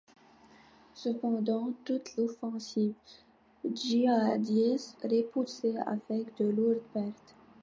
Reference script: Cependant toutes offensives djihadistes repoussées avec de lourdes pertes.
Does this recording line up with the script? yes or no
yes